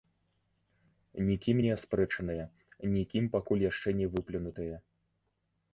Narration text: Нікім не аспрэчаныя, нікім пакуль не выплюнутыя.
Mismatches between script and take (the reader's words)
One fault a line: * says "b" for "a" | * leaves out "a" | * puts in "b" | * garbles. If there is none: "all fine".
* puts in "яшчэ"